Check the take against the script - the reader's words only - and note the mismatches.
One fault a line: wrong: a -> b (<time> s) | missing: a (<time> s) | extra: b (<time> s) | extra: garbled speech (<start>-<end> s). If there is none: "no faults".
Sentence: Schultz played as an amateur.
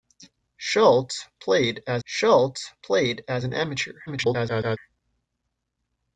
extra: schultz played as (2.0 s)
extra: garbled speech (4.1-4.8 s)